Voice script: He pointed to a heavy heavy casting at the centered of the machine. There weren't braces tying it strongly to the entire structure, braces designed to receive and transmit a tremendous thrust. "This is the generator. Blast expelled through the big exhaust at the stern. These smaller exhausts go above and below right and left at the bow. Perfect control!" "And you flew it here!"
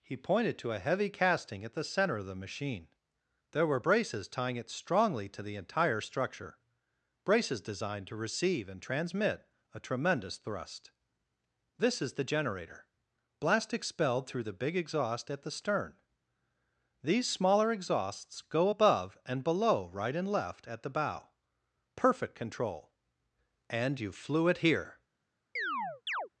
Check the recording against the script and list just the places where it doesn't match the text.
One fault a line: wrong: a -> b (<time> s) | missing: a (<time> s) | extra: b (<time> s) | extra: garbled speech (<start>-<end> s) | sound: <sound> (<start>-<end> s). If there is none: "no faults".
missing: heavy (1.1 s)
wrong: centered -> center (1.8 s)
wrong: weren't -> were (3.7 s)
sound: chirp (25.6-26.3 s)